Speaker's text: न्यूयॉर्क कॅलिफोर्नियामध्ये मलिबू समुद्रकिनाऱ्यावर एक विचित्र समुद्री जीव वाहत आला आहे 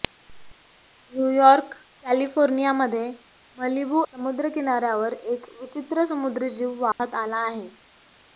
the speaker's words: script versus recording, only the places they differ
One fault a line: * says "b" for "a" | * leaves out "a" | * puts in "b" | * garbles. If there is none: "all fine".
all fine